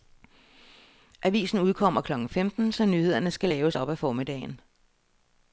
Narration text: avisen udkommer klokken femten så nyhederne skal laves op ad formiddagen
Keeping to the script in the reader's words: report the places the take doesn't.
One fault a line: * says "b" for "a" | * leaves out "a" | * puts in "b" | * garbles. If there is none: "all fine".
all fine